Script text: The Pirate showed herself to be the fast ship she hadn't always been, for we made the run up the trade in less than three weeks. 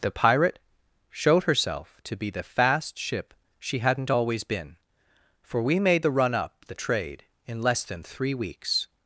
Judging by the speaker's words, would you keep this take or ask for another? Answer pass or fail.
pass